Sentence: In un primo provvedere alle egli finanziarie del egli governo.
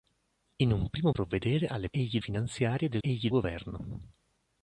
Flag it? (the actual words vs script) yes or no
no